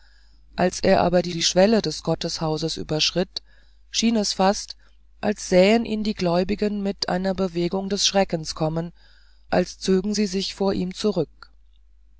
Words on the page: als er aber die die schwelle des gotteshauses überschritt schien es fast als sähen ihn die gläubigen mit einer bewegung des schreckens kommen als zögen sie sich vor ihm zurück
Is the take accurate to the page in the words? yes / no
yes